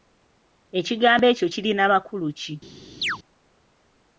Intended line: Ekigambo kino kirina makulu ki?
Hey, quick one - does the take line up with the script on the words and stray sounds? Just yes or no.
no